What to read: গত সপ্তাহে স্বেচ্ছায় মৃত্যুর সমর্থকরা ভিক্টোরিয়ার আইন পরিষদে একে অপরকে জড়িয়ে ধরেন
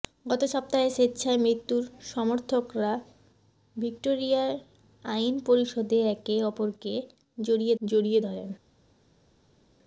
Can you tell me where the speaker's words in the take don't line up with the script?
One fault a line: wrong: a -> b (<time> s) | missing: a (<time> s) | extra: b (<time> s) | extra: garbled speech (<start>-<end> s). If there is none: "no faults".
extra: জড়িয়ে (7.8 s)